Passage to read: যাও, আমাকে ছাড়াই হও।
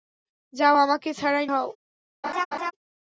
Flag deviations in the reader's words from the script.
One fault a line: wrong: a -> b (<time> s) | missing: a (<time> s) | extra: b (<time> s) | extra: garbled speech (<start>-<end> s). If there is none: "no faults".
no faults